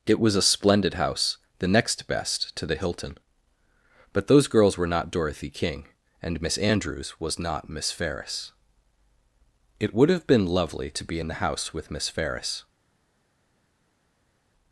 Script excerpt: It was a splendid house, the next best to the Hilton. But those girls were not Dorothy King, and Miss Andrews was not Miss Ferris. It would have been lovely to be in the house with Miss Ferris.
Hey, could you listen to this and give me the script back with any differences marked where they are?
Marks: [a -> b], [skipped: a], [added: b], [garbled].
It was a splendid house, the next best to the Hilton. But those girls were not Dorothy King, and Miss Andrews was not Miss Ferris. It would have been lovely to be in the house with Miss Ferris.